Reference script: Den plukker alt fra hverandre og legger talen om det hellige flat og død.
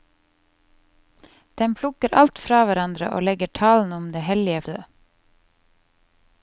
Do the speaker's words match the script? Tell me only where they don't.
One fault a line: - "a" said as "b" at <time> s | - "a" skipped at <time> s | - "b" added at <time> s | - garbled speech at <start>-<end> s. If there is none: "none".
- "flat og" skipped at 4.6 s